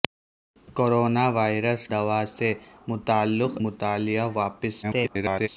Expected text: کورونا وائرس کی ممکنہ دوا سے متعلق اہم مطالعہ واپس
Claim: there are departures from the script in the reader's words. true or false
true